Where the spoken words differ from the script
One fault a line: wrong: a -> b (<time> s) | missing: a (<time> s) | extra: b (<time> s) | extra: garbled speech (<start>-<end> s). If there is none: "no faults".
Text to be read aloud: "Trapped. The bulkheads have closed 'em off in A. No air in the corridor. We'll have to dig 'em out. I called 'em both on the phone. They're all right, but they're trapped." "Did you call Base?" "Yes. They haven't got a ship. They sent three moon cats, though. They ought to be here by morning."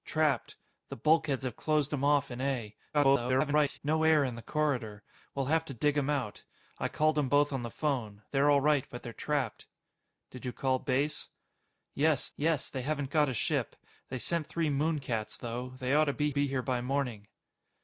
extra: garbled speech (2.9-3.8 s)
extra: yes (12.4 s)
extra: be (16.3 s)